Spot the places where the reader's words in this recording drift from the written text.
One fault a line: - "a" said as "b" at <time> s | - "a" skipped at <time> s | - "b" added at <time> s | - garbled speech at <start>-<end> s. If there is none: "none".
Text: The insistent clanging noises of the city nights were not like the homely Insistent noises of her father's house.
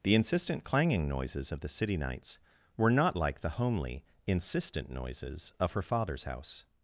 none